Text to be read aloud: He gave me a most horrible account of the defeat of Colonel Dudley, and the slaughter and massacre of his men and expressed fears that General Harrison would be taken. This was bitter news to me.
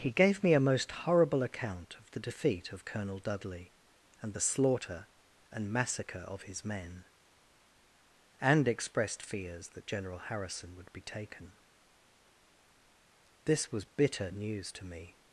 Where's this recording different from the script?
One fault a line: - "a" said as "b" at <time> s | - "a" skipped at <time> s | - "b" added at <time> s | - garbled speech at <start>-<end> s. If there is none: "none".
none